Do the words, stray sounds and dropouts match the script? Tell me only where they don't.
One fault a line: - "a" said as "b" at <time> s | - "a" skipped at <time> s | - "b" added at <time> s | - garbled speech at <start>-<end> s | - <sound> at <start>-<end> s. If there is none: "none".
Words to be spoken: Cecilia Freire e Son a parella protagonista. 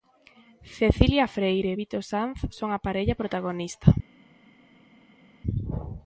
- "Vito Sanz" added at 1.7 s